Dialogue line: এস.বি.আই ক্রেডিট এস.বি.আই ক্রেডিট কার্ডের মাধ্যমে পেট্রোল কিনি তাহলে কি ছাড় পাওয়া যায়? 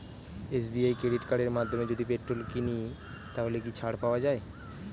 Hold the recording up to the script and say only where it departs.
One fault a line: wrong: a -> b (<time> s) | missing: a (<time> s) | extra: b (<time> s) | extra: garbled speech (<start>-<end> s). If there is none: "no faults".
missing: এস.বি.আই ক্রেডিট (1.2 s)
extra: যদি (1.9 s)